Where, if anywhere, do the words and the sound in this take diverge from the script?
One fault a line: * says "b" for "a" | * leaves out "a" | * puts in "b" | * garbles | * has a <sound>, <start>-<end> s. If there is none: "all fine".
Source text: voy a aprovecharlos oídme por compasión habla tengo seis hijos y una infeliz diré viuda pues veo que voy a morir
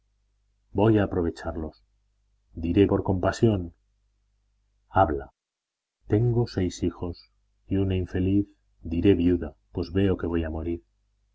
* says "diré" for "oídme"